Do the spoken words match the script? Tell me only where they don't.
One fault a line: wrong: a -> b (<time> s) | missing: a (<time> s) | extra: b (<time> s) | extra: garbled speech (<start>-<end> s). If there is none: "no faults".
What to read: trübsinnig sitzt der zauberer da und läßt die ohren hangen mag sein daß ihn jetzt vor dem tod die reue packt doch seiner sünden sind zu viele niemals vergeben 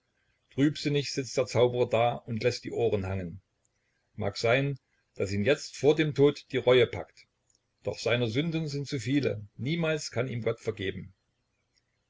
extra: kann ihm gott (10.1 s)